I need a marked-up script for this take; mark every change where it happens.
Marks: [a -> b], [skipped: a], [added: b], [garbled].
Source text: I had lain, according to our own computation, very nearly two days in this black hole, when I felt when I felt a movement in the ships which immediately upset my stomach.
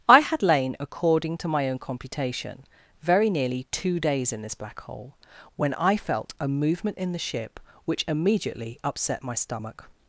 I had lain, according to [our -> my] own computation, very nearly two days in this black hole, when I felt [skipped: when I felt] a movement in the [ships -> ship] which immediately upset my stomach.